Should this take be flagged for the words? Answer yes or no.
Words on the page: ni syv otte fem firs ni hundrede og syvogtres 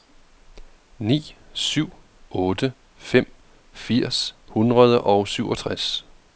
yes